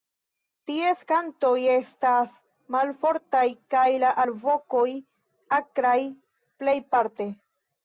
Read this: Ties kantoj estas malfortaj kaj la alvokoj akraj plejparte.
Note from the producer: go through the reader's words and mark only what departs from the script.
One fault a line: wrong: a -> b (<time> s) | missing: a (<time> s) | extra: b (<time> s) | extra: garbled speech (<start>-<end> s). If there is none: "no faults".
no faults